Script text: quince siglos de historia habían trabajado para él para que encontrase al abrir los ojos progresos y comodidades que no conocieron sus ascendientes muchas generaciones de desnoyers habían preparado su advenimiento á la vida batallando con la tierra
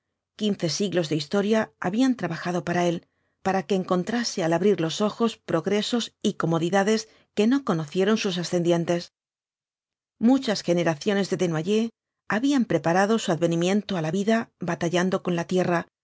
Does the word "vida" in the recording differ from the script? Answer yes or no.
no